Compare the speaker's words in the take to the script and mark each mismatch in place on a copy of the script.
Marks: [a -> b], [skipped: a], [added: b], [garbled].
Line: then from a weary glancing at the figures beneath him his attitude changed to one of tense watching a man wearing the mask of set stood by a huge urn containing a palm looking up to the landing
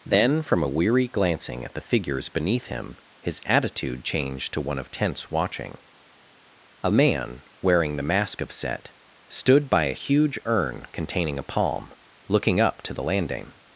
then from a weary glancing at the figures beneath him his attitude changed to one of tense watching a man wearing the mask of set stood by a huge urn containing a palm looking up to the landing